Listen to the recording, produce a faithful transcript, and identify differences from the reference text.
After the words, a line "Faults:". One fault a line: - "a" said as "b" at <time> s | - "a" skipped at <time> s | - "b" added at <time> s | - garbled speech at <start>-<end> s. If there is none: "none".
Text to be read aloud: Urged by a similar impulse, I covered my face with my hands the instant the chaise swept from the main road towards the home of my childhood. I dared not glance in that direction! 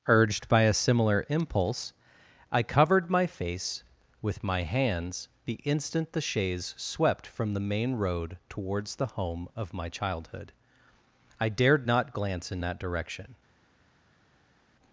Urged by a similar impulse, I covered my face with my hands the instant the chaise swept from the main road towards the home of my childhood. I dared not glance in that direction!
Faults:
none